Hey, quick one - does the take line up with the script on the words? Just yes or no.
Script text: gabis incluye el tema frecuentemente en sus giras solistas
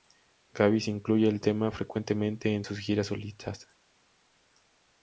yes